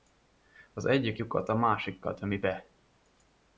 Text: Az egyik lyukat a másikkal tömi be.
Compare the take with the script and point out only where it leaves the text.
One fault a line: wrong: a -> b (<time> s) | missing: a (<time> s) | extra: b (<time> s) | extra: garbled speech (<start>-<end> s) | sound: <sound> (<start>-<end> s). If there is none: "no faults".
no faults